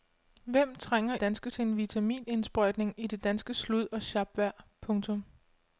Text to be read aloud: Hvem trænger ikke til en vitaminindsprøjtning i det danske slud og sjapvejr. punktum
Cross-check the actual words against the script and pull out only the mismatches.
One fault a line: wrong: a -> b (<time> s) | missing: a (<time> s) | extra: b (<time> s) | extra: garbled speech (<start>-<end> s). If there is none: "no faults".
wrong: ikke -> danske (1.2 s)